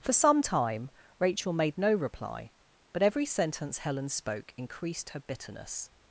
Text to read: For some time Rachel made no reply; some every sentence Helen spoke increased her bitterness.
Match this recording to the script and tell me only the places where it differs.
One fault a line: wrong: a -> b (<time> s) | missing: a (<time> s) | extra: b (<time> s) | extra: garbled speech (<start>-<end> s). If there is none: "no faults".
wrong: some -> but (2.9 s)